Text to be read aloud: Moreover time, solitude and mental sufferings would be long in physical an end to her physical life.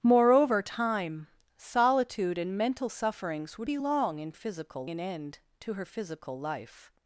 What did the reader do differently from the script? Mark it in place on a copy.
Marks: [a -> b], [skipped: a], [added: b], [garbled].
Moreover time, solitude and mental sufferings would be long in physical an end to her physical life.